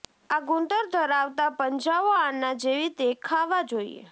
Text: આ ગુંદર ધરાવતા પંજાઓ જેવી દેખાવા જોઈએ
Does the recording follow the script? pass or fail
fail